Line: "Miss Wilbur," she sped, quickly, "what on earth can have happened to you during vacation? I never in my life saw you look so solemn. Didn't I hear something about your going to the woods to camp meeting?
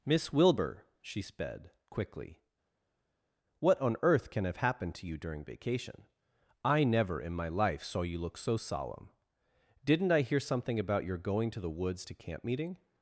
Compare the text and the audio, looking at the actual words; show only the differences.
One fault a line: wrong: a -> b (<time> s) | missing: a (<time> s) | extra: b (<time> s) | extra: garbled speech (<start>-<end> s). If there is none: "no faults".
no faults